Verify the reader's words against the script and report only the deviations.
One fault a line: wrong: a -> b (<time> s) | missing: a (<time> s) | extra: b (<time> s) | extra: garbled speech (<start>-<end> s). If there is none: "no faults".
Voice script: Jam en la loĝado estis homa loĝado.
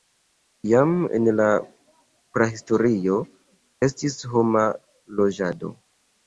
wrong: loĝado -> prahistorio (2.4 s)